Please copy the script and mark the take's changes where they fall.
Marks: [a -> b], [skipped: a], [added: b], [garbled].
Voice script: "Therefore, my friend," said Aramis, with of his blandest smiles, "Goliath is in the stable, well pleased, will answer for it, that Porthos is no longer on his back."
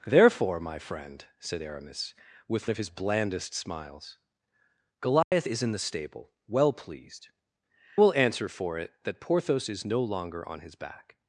"Therefore, my friend," said Aramis, with of his blandest smiles, "Goliath is in the stable, well pleased, will answer for it, that Porthos is no longer on his back."